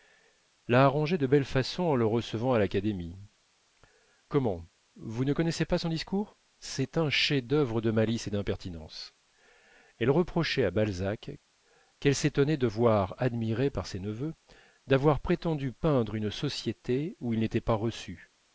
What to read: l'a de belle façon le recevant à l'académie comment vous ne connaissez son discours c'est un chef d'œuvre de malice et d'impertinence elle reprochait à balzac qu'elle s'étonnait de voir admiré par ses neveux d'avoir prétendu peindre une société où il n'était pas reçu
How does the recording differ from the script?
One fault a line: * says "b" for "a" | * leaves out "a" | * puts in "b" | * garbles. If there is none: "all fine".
* puts in "arrangé"
* puts in "en"
* puts in "pas"